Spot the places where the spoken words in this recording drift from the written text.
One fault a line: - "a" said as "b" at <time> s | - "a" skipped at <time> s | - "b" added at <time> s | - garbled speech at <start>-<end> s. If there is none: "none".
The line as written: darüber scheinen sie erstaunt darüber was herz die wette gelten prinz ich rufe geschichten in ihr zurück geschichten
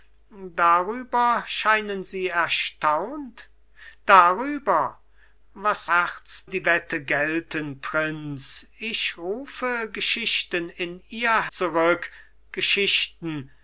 none